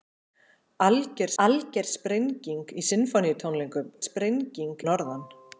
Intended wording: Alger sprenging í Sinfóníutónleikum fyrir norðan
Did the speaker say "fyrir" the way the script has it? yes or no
no